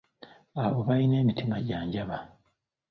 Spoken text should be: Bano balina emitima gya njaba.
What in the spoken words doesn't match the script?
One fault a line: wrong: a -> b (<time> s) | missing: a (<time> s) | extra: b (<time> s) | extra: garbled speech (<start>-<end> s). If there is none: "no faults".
wrong: Bano -> Abo (0.6 s)